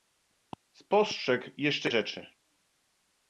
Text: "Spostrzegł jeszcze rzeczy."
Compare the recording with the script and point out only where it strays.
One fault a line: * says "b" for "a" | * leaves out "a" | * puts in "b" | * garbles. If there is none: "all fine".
all fine